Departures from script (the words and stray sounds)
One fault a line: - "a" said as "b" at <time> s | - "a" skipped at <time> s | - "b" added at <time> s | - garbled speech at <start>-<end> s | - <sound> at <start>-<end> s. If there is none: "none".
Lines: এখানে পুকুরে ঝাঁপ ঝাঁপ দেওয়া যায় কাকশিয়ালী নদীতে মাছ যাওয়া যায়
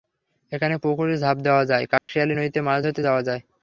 - "ঝাঁপ" skipped at 1.4 s
- dropout at 2.0-2.1 s
- "ধরতে" added at 2.8 s